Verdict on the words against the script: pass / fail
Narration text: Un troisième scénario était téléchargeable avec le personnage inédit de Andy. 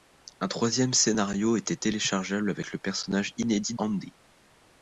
fail